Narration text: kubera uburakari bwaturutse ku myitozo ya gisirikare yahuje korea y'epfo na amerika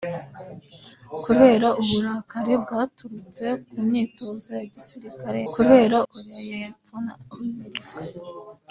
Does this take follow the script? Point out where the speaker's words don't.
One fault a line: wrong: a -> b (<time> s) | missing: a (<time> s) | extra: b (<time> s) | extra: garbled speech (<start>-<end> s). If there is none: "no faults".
wrong: yahuje -> kubera (5.5 s)